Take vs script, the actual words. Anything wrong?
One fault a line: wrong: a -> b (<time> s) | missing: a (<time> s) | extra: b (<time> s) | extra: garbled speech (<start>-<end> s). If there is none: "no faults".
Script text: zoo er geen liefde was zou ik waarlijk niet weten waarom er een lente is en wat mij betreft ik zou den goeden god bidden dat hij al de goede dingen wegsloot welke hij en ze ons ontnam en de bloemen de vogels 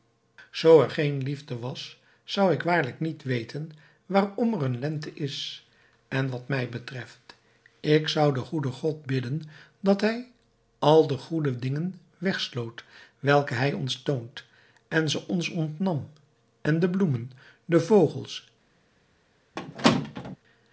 extra: ons toont (13.7 s)